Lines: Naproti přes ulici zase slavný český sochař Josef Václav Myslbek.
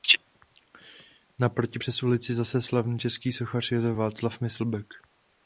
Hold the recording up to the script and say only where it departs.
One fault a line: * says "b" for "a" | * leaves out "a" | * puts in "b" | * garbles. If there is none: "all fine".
all fine